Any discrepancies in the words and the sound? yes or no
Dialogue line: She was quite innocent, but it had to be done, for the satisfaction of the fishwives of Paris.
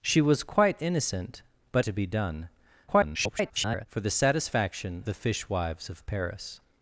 yes